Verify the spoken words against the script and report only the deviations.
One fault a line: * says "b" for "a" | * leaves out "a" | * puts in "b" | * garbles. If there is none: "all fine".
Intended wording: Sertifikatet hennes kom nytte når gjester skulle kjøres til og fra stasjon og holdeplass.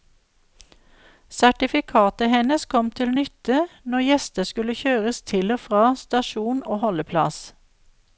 * puts in "til"